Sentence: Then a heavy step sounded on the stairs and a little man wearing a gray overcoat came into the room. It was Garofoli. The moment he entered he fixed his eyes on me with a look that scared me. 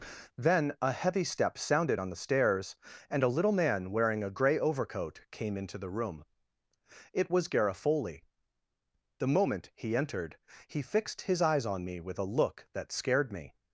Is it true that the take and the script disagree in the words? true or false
false